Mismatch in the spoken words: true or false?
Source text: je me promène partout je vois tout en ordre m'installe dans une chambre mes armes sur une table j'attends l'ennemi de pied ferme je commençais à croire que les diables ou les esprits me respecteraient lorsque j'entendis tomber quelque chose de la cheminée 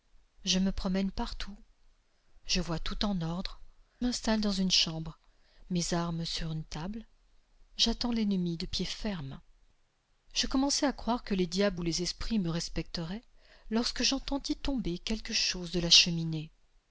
false